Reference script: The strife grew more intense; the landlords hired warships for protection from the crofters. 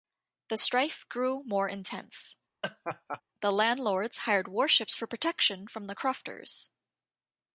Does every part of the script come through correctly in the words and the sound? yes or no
no